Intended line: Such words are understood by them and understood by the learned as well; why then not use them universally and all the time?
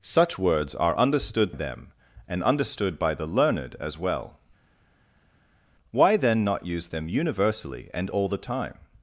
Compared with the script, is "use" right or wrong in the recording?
right